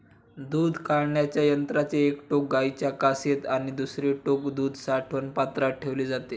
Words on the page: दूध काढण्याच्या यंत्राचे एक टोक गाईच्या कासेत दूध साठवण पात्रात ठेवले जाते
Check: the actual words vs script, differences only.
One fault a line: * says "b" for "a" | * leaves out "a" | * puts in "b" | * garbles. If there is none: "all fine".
* puts in "आणि दुसरे टोक"